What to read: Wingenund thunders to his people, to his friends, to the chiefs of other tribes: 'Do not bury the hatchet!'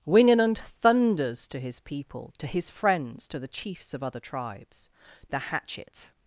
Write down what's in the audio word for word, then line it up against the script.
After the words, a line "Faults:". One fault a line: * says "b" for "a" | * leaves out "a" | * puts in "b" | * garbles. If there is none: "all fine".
Wingenund thunders to his people, to his friends, to the chiefs of other tribes: 'The hatchet!'
Faults:
* leaves out "Do not bury"